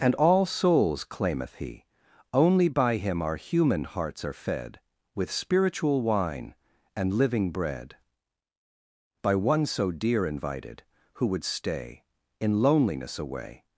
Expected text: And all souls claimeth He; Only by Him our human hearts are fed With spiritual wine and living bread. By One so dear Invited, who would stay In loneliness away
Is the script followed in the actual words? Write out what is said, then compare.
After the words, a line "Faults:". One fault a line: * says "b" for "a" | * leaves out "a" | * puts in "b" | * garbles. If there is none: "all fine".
And all souls claimeth He; Only by Him our human hearts are fed With spiritual wine and living bread. By One so dear Invited, who would stay In loneliness away
Faults:
all fine